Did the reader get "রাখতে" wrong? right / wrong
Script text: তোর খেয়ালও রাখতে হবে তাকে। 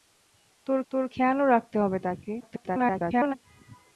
right